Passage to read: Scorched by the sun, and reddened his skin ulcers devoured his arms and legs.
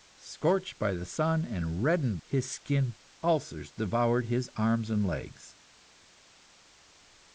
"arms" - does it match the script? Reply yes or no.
yes